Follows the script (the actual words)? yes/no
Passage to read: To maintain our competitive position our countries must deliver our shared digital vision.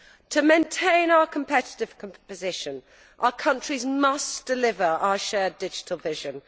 yes